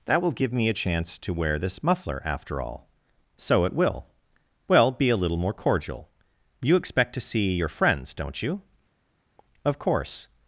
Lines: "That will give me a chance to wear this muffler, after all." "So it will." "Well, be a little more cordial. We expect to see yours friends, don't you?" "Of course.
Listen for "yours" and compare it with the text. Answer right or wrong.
wrong